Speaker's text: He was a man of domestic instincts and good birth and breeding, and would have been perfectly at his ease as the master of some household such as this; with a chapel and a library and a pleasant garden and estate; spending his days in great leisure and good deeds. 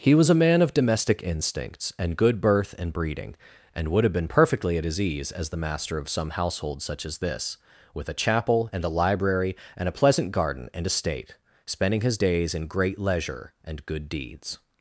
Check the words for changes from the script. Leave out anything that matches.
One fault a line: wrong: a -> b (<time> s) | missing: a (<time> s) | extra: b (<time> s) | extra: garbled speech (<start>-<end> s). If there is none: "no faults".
no faults